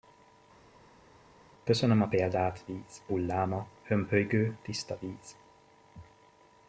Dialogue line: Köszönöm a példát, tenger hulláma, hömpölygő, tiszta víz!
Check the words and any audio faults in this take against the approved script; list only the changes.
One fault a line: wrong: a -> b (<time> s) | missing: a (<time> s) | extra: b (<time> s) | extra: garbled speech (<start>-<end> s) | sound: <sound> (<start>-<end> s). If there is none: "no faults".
wrong: tenger -> víz (2.7 s)